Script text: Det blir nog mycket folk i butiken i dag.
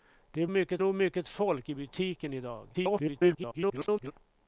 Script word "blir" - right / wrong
wrong